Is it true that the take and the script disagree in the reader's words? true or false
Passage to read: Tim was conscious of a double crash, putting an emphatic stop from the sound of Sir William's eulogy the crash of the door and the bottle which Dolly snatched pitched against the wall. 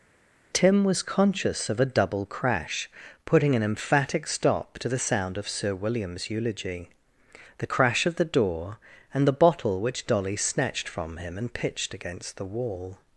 true